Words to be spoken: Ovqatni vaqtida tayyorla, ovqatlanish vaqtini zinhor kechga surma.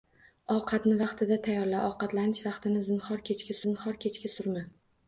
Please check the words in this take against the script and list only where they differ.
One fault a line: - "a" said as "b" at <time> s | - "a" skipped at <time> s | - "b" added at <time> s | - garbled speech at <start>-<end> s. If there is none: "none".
- "zinhor kechga" added at 3.7 s